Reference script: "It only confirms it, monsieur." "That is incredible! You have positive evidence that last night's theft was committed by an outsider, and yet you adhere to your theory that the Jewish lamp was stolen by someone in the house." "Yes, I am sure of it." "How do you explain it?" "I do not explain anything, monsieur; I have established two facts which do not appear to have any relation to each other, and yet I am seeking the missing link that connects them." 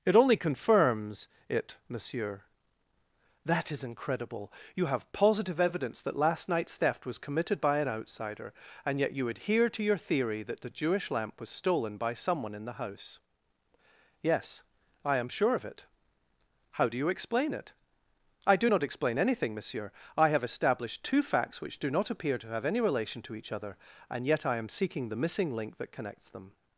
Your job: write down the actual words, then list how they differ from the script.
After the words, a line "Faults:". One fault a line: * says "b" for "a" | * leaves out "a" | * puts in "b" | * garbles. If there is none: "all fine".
"It only confirms it, monsieur." "That is incredible! You have positive evidence that last night's theft was committed by an outsider, and yet you adhere to your theory that the Jewish lamp was stolen by someone in the house." "Yes, I am sure of it." "How do you explain it?" "I do not explain anything, monsieur; I have established two facts which do not appear to have any relation to each other, and yet I am seeking the missing link that connects them."
Faults:
all fine